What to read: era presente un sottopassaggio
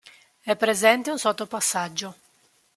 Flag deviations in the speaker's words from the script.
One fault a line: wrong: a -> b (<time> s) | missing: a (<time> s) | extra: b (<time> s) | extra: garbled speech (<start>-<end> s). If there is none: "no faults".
wrong: era -> è (0.4 s)